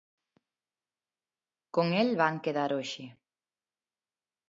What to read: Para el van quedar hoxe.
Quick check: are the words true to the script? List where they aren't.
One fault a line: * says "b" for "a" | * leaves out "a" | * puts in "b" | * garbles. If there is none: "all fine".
* says "Con" for "Para"